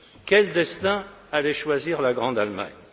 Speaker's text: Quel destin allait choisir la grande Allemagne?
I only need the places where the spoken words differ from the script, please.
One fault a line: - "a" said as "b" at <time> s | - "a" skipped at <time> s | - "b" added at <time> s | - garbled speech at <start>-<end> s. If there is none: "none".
none